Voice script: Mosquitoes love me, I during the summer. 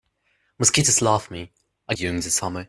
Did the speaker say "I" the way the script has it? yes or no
yes